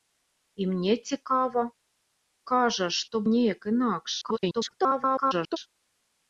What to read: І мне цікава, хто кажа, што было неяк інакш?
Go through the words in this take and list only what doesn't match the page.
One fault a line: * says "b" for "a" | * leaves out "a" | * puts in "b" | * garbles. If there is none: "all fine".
* leaves out "хто"
* leaves out "было"
* garbles